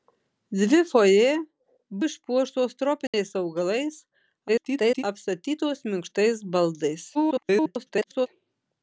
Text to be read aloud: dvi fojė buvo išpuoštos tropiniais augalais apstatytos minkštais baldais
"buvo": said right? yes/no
no